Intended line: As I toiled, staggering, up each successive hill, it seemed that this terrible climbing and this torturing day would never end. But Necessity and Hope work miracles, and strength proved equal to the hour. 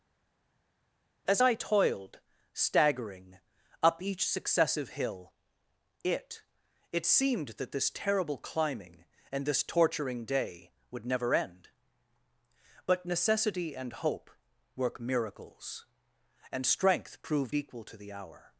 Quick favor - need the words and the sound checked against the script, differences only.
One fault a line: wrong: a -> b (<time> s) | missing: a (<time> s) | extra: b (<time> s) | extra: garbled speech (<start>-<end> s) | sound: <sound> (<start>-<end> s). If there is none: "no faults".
extra: it (6.9 s)